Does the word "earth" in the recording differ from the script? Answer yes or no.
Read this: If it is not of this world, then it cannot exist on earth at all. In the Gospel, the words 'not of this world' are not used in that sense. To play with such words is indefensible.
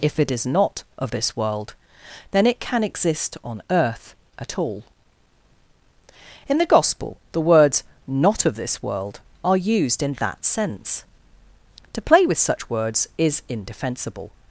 no